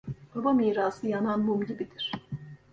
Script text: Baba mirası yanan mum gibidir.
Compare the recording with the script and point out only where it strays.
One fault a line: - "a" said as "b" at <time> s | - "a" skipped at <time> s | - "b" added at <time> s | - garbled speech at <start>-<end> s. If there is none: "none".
none